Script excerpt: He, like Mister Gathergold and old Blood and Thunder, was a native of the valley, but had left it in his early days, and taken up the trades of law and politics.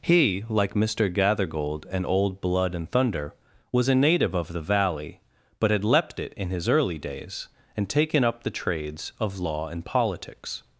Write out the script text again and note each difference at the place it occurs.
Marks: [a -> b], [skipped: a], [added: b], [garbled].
He, like Mister Gathergold and old Blood and Thunder, was a native of the valley, but had [left -> leapt] it in his early days, and taken up the trades of law and politics.